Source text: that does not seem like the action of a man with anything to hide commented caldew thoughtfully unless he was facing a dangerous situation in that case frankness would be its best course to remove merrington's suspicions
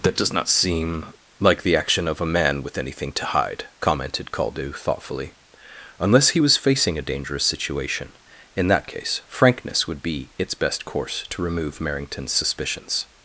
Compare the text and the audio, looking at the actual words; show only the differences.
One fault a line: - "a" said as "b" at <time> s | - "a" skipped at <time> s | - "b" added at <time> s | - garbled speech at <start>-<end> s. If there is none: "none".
none